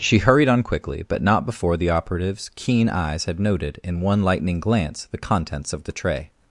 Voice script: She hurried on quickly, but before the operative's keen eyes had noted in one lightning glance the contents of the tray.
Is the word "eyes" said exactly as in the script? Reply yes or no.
yes